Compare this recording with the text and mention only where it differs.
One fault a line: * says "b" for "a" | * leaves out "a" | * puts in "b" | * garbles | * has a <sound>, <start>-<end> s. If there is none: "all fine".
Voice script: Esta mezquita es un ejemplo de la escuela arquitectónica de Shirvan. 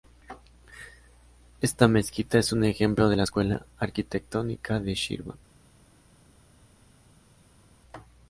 all fine